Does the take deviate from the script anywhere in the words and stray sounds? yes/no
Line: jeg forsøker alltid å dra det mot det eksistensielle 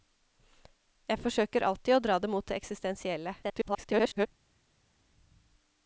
yes